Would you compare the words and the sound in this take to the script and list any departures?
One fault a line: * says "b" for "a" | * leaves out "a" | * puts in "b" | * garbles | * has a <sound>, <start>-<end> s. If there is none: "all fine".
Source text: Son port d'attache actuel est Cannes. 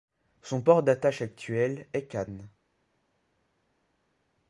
all fine